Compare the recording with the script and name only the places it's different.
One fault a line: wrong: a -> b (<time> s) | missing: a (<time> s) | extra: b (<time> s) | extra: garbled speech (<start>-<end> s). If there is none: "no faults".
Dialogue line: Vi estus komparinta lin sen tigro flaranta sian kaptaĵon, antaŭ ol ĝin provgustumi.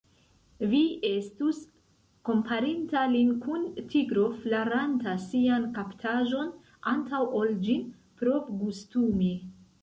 wrong: sen -> kun (3.4 s)